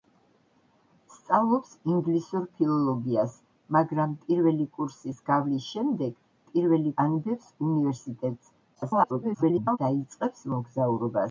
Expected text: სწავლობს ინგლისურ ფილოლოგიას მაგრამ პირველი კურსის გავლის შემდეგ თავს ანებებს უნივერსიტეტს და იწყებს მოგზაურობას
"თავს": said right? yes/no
no